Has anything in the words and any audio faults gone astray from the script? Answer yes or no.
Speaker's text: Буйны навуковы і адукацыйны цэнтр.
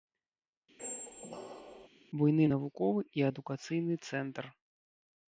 yes